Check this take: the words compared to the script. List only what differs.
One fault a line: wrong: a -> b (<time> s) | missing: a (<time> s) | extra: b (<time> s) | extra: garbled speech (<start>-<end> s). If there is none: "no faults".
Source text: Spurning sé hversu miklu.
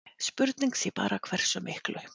extra: bara (1.0 s)